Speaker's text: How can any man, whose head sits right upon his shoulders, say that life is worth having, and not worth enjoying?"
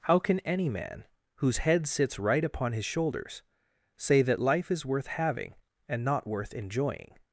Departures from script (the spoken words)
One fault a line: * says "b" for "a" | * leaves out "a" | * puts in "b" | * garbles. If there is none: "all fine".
all fine